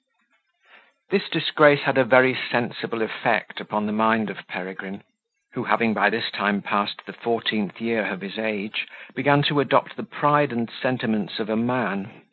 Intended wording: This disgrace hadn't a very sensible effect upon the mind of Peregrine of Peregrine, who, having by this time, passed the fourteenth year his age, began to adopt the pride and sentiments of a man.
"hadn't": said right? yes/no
no